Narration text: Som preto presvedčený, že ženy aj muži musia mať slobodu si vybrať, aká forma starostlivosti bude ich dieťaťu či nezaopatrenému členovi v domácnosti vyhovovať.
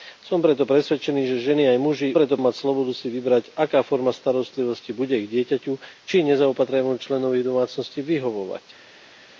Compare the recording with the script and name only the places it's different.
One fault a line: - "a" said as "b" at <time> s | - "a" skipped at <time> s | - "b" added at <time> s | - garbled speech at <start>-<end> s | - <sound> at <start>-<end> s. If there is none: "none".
- "musia" said as "preto" at 2.1 s